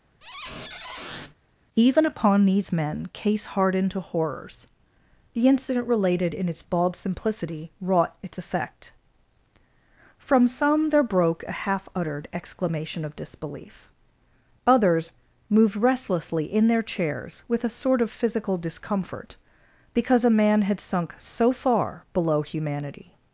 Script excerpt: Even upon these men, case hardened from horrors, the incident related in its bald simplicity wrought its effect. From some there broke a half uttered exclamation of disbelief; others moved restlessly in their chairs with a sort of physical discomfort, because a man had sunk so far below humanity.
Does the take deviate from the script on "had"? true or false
false